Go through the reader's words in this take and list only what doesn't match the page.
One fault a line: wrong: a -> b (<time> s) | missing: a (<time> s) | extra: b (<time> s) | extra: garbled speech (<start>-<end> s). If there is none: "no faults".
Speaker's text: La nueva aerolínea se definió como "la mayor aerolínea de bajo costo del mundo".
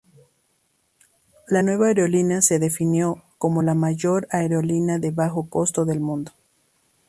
no faults